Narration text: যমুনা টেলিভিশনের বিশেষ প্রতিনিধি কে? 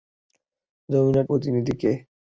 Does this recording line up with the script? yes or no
no